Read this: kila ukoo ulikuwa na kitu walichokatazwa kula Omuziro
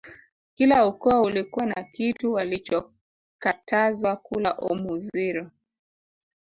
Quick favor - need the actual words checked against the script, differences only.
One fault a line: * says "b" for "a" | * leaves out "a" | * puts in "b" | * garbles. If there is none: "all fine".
all fine